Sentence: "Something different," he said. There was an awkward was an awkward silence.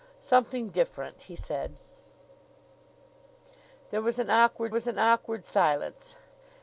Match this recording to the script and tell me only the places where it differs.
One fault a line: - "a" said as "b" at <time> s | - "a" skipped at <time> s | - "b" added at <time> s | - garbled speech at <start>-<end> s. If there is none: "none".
none